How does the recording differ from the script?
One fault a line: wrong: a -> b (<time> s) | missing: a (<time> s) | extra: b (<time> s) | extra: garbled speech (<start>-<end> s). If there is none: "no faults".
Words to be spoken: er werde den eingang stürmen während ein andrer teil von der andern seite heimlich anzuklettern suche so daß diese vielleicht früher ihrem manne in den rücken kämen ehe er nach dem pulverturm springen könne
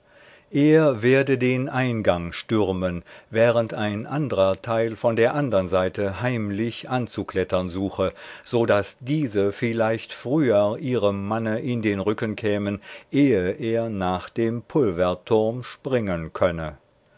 no faults